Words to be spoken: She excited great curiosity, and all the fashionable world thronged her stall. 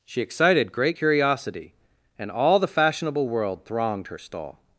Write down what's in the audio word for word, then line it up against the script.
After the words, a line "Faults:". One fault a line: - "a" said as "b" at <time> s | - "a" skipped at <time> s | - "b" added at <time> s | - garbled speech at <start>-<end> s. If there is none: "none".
She excited great curiosity, and all the fashionable world thronged her stall.
Faults:
none